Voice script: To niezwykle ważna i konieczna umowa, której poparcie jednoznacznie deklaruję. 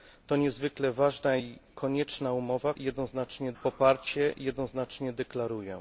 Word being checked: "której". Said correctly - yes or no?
no